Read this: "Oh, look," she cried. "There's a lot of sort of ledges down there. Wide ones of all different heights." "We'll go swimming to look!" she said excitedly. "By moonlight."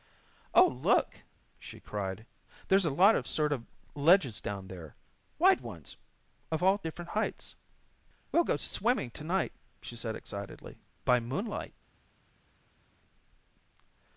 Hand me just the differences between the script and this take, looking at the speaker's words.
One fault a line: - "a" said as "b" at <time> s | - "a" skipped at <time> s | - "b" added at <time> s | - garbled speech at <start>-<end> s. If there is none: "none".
- "look" said as "night" at 9.2 s